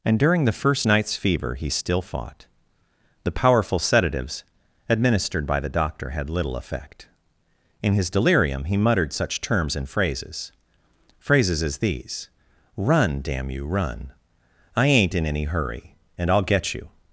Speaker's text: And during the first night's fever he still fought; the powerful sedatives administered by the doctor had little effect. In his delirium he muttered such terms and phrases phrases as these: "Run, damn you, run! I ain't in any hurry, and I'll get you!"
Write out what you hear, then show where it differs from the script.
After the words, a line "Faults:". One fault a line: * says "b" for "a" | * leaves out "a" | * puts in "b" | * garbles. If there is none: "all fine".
And during the first night's fever he still fought; the powerful sedatives administered by the doctor had little effect. In his delirium he muttered such terms and phrases phrases as these: "Run, damn you, run! I ain't in any hurry, and I'll get you!"
Faults:
all fine